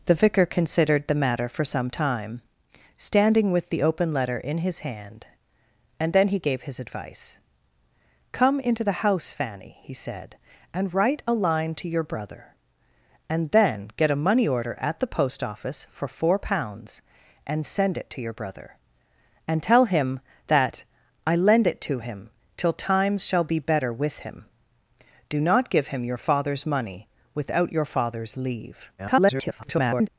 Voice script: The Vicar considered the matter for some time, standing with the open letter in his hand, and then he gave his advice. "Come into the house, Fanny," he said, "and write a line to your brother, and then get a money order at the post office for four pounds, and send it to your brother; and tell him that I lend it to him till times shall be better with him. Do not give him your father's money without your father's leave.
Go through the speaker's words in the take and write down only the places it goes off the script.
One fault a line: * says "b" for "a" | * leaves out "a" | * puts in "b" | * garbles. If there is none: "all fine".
* garbles